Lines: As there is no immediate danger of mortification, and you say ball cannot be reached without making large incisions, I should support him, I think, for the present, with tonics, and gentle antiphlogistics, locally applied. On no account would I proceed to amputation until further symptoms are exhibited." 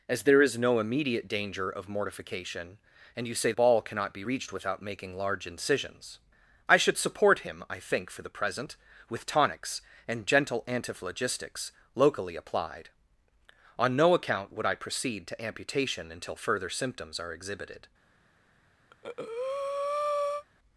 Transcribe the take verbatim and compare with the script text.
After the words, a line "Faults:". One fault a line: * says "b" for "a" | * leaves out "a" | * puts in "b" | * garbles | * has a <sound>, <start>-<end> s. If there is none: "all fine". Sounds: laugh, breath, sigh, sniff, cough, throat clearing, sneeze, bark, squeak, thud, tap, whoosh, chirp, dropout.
As there is no immediate danger of mortification, and you say ball cannot be reached without making large incisions, I should support him, I think, for the present, with tonics, and gentle antiphlogistics, locally applied. On no account would I proceed to amputation until further symptoms are exhibited."
Faults:
* has a breath, 18.9-20.4 s